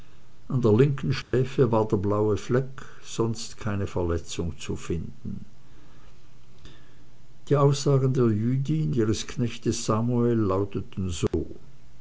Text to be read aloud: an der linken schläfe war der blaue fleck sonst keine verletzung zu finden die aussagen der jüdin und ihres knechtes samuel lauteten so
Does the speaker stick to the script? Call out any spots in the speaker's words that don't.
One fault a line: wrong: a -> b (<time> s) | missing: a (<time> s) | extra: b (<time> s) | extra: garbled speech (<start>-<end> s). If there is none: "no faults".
missing: und (9.0 s)